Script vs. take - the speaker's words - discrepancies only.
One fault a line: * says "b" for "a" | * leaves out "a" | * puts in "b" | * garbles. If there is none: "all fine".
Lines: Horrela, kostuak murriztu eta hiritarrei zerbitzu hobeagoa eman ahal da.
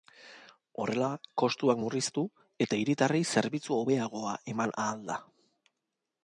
all fine